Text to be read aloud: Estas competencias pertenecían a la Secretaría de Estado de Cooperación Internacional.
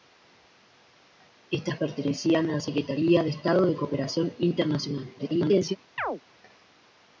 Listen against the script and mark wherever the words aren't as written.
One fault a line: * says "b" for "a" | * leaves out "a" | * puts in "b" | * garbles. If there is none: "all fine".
* leaves out "competencias"
* garbles